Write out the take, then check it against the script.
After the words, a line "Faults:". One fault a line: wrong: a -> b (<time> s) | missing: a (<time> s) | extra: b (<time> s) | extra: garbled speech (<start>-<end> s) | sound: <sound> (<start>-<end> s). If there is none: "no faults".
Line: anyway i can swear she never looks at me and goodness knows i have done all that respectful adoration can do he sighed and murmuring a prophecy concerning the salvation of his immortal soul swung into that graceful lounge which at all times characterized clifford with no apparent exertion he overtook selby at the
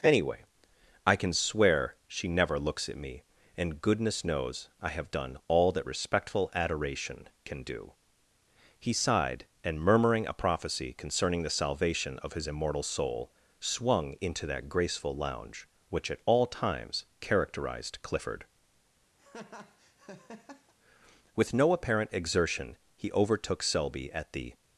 anyway i can swear she never looks at me and goodness knows i have done all that respectful adoration can do he sighed and murmuring a prophecy concerning the salvation of his immortal soul swung into that graceful lounge which at all times characterized clifford with no apparent exertion he overtook selby at the
Faults:
sound: laugh (19.2-20.7 s)